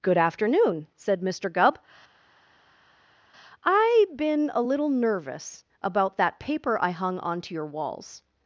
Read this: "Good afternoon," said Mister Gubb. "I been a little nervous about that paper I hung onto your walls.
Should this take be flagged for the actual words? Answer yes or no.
no